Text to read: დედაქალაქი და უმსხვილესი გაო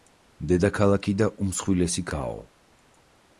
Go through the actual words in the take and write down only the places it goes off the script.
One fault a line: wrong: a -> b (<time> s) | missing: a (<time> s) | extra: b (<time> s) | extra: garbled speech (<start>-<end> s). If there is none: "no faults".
no faults